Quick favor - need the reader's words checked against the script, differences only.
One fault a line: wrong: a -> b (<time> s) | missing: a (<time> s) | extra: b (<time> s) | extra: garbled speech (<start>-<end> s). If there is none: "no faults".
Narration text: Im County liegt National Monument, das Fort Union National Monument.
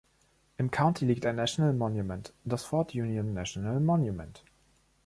extra: ein (1.3 s)